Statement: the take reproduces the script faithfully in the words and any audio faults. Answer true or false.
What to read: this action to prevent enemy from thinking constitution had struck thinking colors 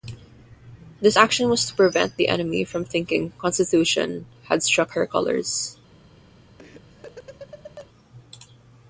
false